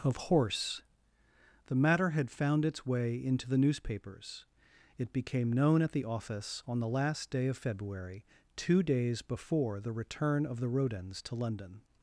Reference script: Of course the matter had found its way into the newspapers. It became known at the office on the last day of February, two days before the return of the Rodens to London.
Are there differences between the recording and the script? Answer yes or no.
yes